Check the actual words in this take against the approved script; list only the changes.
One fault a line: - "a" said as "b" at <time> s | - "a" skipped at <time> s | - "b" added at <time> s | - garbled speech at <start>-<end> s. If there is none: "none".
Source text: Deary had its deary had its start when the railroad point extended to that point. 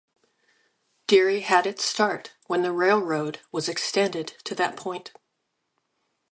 - "deary had its" skipped at 1.9 s
- "point" said as "was" at 3.5 s